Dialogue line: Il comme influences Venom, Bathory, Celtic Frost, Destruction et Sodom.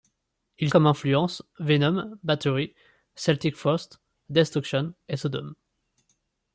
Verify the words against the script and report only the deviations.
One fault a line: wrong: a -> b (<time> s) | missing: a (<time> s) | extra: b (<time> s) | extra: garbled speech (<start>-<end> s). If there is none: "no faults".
no faults